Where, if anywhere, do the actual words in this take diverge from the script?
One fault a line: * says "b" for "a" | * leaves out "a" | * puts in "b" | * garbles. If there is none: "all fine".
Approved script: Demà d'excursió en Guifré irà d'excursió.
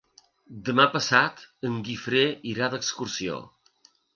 * says "passat" for "d'excursió"